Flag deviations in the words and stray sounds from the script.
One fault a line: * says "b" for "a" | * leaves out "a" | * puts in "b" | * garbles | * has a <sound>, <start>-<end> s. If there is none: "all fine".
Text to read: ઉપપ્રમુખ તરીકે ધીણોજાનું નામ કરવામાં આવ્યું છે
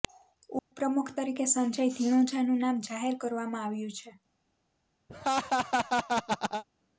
* has a dropout, 0.6-0.7 s
* puts in "સંજય"
* puts in "જાહેર"
* has a laugh, 5.1-6.6 s